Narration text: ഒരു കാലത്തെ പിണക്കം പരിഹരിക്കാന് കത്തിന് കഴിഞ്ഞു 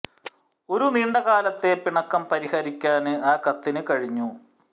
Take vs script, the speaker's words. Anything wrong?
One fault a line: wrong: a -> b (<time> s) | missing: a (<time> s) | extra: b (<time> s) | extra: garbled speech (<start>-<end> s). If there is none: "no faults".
extra: നീണ്ട (0.8 s)
extra: ആ (3.2 s)